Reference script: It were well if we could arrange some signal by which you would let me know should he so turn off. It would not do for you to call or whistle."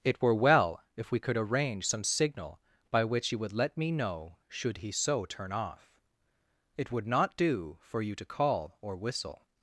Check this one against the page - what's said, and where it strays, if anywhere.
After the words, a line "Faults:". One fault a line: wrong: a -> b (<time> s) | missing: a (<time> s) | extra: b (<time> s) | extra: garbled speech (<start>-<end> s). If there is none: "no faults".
It were well if we could arrange some signal by which you would let me know should he so turn off. It would not do for you to call or whistle."
Faults:
no faults